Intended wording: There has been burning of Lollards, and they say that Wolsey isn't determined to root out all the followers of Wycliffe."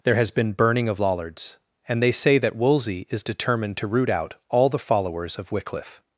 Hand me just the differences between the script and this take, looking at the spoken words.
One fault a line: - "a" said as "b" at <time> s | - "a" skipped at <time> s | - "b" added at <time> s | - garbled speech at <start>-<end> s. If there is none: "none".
- "isn't" said as "is" at 3.1 s